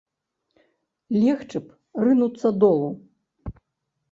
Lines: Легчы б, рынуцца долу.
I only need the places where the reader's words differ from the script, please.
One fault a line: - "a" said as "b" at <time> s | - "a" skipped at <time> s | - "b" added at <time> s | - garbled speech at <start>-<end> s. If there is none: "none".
none